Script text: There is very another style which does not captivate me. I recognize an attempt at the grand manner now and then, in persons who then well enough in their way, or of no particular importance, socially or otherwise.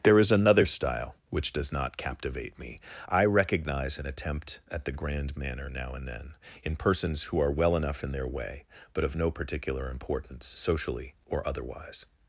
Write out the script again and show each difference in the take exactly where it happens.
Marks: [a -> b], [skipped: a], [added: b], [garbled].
There is [skipped: very] another style which does not captivate me. I recognize an attempt at the grand manner now and then, in persons who [then -> are] well enough in their way, [or -> but] of no particular importance, socially or otherwise.